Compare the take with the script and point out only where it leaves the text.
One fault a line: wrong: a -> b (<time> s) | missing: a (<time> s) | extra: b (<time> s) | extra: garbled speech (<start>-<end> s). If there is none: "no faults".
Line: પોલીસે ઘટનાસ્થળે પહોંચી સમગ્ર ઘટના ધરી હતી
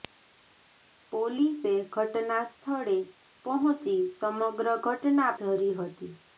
no faults